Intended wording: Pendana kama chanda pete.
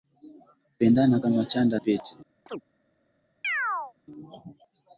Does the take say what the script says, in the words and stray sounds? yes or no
no